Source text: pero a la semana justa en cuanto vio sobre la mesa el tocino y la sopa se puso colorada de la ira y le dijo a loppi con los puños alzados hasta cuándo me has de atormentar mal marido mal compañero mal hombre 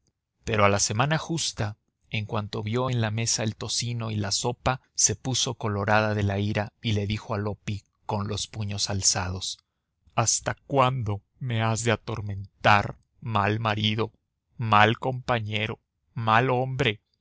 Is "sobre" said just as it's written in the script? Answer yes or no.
no